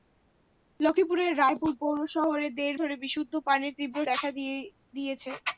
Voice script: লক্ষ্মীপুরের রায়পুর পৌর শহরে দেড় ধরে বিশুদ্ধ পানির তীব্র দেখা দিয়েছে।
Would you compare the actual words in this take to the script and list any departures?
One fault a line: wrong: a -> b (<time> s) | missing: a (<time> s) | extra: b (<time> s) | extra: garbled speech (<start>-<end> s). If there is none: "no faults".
no faults